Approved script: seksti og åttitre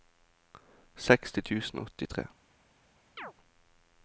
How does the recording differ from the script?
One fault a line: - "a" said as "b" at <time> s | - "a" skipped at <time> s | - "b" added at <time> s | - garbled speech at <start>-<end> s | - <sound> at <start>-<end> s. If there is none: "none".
- "tusen" added at 1.5 s
- chirp at 3.2-3.3 s